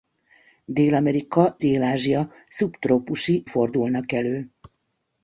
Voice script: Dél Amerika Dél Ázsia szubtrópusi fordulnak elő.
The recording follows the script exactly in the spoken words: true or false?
true